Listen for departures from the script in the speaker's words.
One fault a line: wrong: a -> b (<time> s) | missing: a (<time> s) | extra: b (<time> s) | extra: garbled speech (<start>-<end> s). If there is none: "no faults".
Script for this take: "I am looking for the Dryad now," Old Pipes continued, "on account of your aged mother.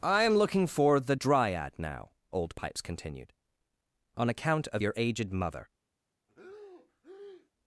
no faults